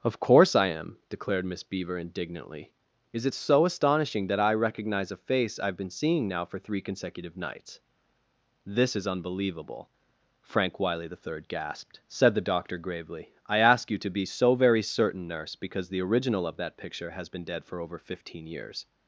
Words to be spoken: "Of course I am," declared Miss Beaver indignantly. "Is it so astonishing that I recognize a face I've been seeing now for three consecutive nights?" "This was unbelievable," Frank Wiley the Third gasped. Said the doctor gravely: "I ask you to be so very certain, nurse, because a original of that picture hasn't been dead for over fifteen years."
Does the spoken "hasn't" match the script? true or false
false